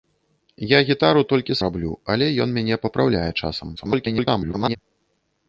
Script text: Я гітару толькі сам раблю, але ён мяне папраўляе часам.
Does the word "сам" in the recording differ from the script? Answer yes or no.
yes